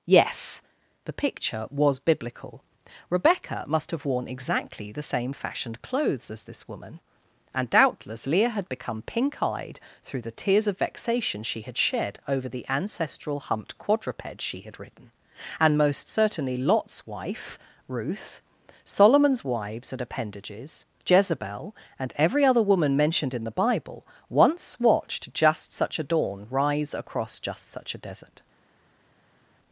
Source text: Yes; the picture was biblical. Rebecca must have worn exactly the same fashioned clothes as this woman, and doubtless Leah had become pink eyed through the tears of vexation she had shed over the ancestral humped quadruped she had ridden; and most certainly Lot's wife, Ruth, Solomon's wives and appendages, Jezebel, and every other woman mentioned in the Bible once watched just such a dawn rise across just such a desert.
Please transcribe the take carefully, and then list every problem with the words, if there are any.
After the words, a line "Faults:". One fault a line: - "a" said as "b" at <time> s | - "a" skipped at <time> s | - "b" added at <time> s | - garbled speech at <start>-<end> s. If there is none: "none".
Yes; the picture was biblical. Rebecca must have worn exactly the same fashioned clothes as this woman, and doubtless Leah had become pink eyed through the tears of vexation she had shed over the ancestral humped quadruped she had ridden; and most certainly Lot's wife, Ruth, Solomon's wives and appendages, Jezebel, and every other woman mentioned in the Bible once watched just such a dawn rise across just such a desert.
Faults:
none